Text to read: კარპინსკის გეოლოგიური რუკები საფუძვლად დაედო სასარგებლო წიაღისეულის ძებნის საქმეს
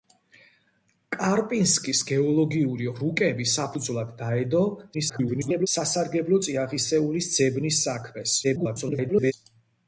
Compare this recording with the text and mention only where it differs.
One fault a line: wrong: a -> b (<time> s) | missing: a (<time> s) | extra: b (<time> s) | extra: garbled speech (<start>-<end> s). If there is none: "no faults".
extra: garbled speech (4.9-5.7 s)
extra: garbled speech (8.4-9.3 s)